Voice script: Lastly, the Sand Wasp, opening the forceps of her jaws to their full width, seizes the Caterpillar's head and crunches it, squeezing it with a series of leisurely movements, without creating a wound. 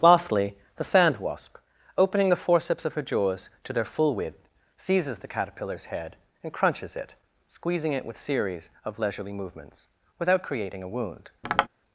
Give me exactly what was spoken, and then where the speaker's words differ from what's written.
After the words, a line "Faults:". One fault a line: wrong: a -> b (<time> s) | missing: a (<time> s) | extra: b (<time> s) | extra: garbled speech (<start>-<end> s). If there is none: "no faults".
Lastly, the Sand Wasp, opening the forceps of her jaws to their full width, seizes the Caterpillar's head and crunches it, squeezing it with series of leisurely movements, without creating a wound.
Faults:
missing: a (8.2 s)